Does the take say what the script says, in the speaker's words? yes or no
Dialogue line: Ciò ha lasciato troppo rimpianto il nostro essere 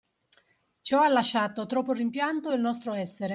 yes